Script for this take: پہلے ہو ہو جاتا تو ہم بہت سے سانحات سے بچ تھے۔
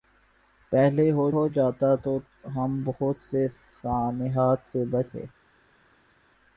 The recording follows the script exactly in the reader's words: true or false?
true